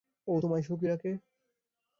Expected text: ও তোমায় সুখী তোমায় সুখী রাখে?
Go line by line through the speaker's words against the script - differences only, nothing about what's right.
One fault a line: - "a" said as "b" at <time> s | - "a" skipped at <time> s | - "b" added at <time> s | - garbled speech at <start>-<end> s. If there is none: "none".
- "তোমায় সুখী" skipped at 0.9 s